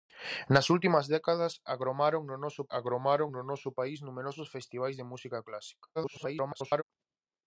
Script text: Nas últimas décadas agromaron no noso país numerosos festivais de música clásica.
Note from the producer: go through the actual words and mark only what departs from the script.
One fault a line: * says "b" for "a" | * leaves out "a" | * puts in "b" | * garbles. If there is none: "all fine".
* puts in "agromaron no noso"
* garbles